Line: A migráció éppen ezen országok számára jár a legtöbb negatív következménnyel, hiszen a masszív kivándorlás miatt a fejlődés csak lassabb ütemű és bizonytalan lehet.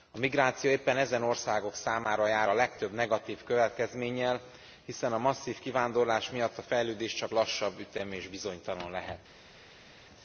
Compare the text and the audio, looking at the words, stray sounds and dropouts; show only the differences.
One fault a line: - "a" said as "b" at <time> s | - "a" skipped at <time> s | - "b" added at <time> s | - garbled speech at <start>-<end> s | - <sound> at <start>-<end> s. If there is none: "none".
none